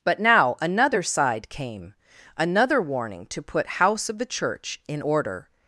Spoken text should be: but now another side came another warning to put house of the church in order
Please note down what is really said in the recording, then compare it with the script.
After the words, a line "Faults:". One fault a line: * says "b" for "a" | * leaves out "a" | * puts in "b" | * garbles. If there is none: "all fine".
but now another side came another warning to put house of the church in order
Faults:
all fine